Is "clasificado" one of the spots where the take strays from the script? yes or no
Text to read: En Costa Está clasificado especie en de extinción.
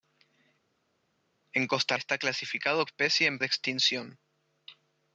no